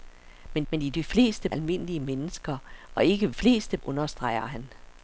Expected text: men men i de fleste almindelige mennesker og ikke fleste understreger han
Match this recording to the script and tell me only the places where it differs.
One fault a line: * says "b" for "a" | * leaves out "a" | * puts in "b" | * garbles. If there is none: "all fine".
all fine